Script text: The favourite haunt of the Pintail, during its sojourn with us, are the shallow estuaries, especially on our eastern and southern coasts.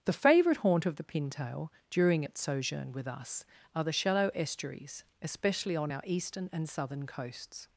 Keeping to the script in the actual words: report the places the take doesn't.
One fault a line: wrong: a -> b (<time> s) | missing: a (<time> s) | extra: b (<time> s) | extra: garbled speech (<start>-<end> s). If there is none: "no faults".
no faults